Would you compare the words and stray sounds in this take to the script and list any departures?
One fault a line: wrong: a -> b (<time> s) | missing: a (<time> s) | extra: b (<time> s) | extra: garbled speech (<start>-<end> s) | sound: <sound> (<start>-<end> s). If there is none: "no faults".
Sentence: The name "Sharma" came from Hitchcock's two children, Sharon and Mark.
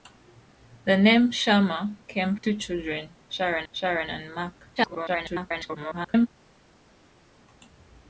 missing: from Hitchcock's (2.4 s)
extra: Sharon (3.7 s)
extra: garbled speech (4.8-6.3 s)